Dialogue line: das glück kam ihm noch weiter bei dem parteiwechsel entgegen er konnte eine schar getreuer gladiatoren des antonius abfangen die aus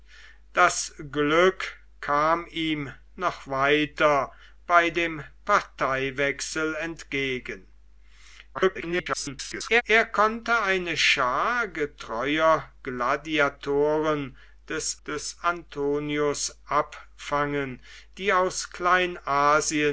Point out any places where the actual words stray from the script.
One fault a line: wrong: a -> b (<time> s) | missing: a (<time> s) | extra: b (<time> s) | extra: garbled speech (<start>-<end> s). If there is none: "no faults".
extra: garbled speech (8.5-9.8 s)
extra: des (15.1 s)